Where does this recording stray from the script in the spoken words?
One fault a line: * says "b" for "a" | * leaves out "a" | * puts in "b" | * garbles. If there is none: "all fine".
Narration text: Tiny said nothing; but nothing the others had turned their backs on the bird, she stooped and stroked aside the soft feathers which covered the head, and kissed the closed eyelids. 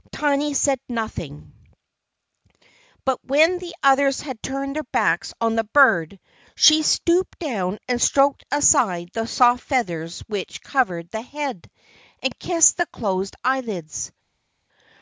* says "when" for "nothing"
* puts in "down"